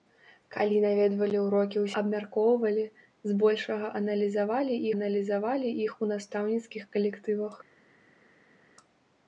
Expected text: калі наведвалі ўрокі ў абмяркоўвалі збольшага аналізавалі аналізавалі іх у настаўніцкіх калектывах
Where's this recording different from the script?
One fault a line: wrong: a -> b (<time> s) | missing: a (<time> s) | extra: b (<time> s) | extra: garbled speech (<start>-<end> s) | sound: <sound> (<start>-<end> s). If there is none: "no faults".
no faults